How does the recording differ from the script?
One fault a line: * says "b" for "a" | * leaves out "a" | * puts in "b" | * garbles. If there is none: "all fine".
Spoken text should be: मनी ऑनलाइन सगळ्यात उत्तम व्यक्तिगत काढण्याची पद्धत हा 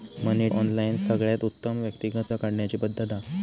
all fine